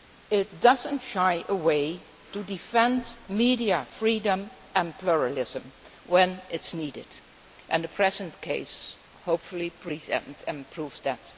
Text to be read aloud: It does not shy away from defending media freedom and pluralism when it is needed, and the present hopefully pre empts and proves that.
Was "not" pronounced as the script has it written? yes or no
yes